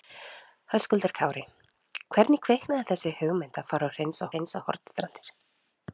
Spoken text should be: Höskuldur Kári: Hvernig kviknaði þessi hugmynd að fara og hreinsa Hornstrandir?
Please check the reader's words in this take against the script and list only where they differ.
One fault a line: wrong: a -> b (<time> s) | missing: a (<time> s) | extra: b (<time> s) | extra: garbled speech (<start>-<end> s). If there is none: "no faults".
extra: hreinsa (4.3 s)